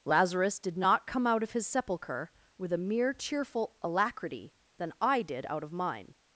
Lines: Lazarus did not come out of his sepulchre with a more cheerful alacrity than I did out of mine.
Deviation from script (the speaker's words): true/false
true